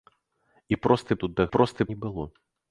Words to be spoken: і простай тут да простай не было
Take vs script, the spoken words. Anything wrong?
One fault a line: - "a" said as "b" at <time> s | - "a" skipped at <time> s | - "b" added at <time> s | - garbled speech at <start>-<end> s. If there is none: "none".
none